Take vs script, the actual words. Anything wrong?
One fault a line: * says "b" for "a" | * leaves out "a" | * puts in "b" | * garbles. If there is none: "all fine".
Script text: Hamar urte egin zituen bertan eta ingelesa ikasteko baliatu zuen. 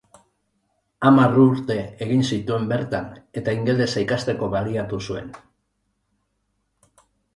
all fine